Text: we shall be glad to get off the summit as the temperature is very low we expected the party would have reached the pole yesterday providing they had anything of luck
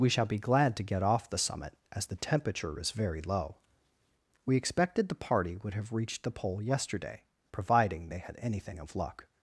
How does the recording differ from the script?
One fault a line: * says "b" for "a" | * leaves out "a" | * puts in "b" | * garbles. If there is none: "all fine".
all fine